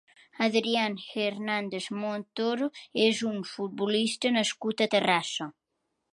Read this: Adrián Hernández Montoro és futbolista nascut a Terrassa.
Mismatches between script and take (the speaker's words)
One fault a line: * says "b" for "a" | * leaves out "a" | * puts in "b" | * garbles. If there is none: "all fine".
* puts in "un"